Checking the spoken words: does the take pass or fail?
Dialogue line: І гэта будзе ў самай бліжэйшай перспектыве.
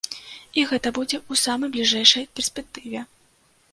pass